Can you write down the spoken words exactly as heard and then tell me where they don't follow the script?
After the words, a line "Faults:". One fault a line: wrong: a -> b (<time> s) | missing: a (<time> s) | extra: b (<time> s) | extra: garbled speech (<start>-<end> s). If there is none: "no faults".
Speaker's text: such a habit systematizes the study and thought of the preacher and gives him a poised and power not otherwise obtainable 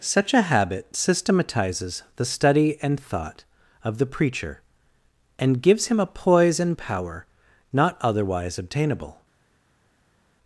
such a habit systematizes the study and thought of the preacher and gives him a poise and power not otherwise obtainable
Faults:
wrong: poised -> poise (6.1 s)